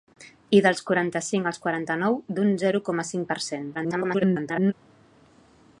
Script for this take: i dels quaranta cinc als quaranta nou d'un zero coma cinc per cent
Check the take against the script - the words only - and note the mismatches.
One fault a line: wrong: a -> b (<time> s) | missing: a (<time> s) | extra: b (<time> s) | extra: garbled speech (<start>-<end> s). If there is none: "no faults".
extra: garbled speech (3.7-4.7 s)